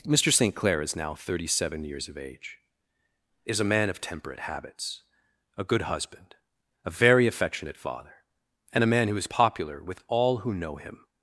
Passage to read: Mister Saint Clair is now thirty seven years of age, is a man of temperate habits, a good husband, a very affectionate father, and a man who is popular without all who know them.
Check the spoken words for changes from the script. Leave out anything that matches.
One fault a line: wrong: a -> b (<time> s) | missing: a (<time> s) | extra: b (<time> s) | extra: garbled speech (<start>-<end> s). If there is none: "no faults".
wrong: without -> with (9.8 s)
wrong: them -> him (10.8 s)